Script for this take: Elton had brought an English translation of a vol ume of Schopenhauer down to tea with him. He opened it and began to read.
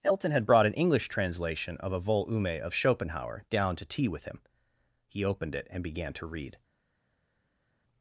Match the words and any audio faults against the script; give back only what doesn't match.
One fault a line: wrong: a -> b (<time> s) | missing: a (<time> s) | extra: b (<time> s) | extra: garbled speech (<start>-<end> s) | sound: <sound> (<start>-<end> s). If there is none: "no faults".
no faults